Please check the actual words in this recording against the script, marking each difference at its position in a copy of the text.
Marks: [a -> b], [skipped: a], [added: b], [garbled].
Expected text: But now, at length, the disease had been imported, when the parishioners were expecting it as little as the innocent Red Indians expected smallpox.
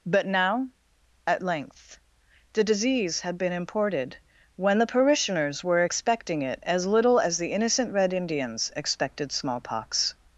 But now, at length, the disease had been imported, when the parishioners were expecting it as little as the innocent Red Indians expected smallpox.